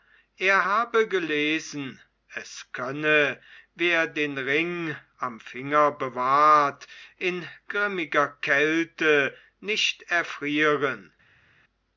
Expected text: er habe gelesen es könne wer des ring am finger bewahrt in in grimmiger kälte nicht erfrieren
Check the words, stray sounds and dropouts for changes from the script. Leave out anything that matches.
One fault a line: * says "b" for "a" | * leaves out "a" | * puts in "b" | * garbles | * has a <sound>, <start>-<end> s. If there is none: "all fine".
* says "den" for "des"
* leaves out "in"